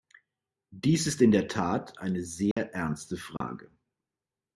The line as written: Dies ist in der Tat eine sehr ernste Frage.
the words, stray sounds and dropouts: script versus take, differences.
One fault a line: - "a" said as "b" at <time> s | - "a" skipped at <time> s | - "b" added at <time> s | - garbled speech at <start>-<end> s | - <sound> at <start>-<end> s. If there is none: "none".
- dropout at 2.5-2.6 s
- dropout at 3.4-3.4 s